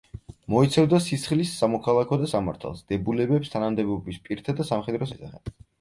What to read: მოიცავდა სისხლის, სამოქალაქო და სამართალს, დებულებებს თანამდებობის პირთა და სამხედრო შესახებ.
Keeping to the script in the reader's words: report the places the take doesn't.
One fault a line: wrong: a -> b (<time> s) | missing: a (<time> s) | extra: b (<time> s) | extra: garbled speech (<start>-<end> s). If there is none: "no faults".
no faults